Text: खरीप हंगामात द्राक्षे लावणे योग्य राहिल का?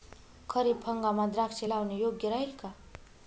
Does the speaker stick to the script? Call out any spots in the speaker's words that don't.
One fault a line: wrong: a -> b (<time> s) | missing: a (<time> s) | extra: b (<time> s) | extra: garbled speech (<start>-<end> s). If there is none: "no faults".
no faults